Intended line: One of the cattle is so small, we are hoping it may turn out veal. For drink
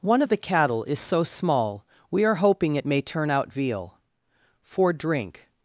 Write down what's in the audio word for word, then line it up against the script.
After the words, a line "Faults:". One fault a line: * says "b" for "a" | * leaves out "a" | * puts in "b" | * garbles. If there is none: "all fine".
One of the cattle is so small, we are hoping it may turn out veal. For drink
Faults:
all fine